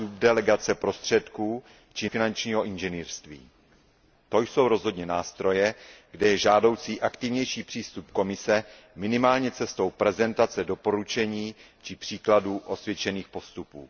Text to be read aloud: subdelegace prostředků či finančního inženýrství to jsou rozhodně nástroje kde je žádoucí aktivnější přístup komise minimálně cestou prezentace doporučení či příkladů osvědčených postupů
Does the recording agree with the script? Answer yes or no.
yes